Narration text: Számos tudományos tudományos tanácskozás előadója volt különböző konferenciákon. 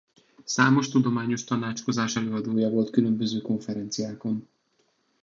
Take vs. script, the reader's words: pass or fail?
fail